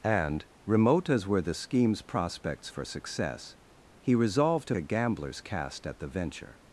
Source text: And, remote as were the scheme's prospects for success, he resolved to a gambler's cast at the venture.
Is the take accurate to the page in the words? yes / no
yes